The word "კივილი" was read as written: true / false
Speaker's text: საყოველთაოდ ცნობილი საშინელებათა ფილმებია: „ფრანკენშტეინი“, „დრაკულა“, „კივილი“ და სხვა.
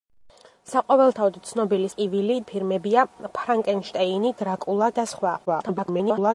false